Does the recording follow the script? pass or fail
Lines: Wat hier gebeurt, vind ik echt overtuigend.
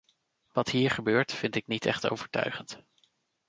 fail